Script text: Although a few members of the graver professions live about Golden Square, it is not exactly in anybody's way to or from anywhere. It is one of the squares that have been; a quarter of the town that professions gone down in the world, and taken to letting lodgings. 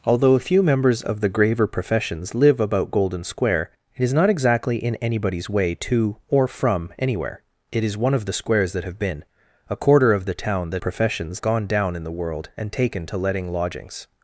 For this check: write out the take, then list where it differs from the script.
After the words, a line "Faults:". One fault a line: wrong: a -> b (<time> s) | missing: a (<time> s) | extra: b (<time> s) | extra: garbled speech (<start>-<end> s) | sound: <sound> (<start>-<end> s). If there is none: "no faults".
Although a few members of the graver professions live about Golden Square, it is not exactly in anybody's way to or from anywhere. It is one of the squares that have been; a quarter of the town that professions gone down in the world, and taken to letting lodgings.
Faults:
no faults